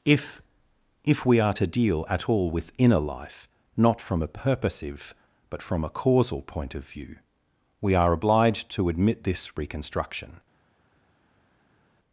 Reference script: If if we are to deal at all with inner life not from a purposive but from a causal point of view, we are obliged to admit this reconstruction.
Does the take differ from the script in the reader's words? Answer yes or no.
no